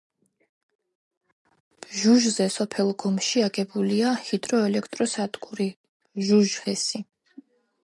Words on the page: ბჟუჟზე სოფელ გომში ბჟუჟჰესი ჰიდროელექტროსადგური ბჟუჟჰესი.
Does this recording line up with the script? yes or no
no